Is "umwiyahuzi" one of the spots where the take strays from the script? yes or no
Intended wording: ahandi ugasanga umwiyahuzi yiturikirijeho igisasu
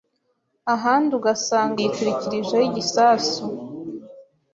yes